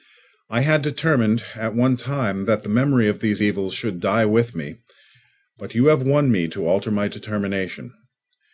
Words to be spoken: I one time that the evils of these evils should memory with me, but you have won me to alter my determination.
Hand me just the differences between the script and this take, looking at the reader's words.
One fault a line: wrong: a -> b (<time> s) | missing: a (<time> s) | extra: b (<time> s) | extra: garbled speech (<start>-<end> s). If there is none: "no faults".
extra: had determined at (0.6 s)
wrong: evils -> memory (2.7 s)
wrong: memory -> die (4.0 s)